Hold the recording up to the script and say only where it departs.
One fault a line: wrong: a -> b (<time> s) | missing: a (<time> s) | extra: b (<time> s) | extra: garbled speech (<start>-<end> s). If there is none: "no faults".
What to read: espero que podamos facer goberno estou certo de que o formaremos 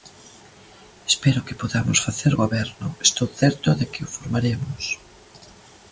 no faults